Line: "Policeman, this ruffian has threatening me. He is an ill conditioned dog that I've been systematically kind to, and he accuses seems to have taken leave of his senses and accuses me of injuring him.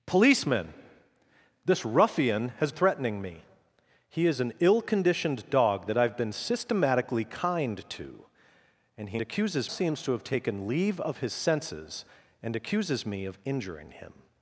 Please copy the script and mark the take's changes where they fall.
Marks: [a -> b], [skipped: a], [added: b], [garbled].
"Policeman, this ruffian has threatening me. He is an ill conditioned dog that I've been systematically kind to, and he accuses seems to have taken leave of his senses and accuses me of injuring him.